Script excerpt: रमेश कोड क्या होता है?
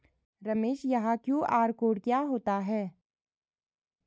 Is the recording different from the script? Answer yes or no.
yes